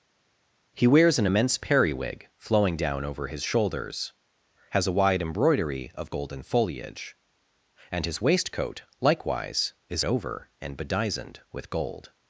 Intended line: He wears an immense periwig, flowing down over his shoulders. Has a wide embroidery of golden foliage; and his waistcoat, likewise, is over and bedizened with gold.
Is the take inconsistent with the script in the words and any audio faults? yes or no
no